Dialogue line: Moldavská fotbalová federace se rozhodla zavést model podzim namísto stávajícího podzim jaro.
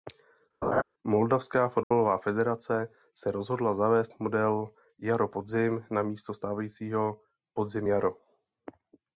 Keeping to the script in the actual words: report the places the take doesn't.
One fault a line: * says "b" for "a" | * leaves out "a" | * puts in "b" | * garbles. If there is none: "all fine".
* puts in "jaro"